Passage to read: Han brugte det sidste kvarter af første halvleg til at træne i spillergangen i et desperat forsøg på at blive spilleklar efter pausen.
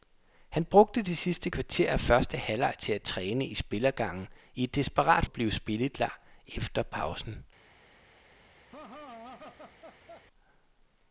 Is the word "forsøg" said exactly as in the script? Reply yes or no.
no